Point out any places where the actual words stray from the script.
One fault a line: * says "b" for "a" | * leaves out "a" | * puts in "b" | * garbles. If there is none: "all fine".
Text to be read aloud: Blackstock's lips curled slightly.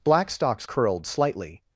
* leaves out "lips"